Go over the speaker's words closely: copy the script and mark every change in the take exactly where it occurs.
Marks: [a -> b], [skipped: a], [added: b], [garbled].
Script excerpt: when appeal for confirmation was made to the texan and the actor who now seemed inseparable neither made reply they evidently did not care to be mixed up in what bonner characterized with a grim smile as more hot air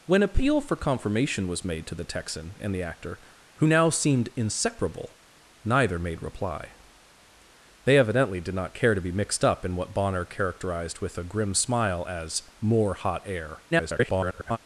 when appeal for confirmation was made to the texan and the actor who now seemed inseparable neither made reply they evidently did not care to be mixed up in what bonner characterized with a grim smile as more hot air [garbled]